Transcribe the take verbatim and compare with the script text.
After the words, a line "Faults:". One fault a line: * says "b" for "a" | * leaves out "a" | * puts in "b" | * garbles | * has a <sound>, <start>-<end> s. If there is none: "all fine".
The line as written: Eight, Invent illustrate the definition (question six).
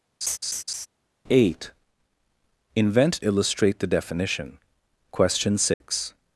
Eight, Invent illustrate the definition (question six).
Faults:
* has a laugh, 0.2-0.9 s
* has a dropout, 5.7-5.8 s